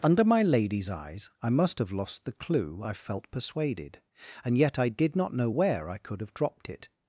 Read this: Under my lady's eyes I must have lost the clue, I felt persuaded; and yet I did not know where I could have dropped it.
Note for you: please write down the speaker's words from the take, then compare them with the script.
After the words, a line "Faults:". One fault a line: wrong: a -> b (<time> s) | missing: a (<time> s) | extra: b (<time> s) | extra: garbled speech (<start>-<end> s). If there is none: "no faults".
Under my lady's eyes I must have lost the clue, I felt persuaded; and yet I did not know where I could have dropped it.
Faults:
no faults